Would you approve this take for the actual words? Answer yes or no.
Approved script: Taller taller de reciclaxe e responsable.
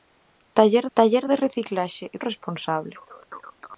yes